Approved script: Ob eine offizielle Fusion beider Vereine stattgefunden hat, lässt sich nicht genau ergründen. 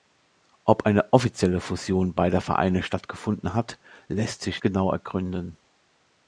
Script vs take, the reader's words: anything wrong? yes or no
yes